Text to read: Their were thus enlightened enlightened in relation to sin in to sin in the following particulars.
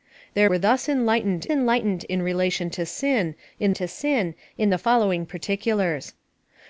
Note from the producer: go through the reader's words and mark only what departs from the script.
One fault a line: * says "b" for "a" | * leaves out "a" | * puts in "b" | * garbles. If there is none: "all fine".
all fine